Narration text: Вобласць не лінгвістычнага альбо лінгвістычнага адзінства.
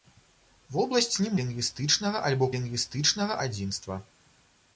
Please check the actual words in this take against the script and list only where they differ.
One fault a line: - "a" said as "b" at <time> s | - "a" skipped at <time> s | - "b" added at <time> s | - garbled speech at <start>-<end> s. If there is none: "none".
none